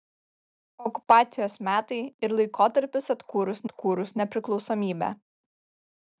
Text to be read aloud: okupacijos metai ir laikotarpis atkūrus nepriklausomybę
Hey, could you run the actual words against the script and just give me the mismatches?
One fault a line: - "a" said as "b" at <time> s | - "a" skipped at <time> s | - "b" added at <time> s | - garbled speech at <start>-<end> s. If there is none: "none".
- "atkūrus" added at 3.7 s